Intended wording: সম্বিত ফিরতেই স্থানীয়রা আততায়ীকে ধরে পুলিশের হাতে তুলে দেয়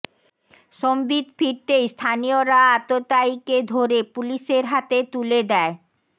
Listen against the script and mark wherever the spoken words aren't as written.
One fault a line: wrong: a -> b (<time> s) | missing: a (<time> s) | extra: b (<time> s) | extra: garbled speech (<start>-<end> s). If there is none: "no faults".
no faults